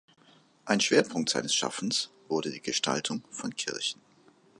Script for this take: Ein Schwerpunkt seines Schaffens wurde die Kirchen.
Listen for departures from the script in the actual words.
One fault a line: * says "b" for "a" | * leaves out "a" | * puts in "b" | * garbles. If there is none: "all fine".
* puts in "Gestaltung von"